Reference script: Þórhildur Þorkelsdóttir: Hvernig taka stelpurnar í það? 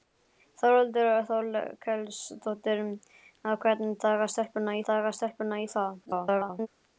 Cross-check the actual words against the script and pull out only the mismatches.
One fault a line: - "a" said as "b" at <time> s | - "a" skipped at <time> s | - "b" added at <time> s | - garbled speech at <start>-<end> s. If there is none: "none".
- "taka stelpurnar" added at 4.9 s
- garbled speech at 6.1-6.7 s